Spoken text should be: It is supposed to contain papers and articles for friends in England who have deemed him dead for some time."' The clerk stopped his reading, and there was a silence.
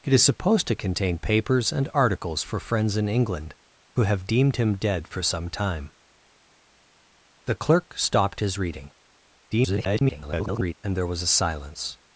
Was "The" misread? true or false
false